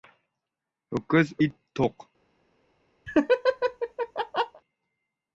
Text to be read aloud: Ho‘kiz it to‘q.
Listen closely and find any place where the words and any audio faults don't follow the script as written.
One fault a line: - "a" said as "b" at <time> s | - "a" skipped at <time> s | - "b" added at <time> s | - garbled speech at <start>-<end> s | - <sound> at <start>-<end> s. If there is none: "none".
- laugh at 3.1-4.6 s